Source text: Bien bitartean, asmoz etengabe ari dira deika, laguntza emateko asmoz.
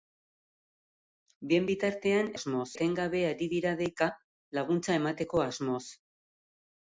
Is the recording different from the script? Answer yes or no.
no